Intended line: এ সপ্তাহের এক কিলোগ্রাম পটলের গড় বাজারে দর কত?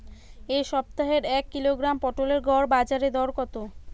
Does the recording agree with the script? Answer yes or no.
yes